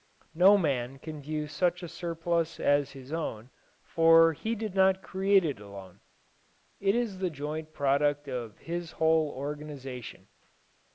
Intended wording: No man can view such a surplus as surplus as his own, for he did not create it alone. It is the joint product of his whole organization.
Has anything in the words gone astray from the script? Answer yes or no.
yes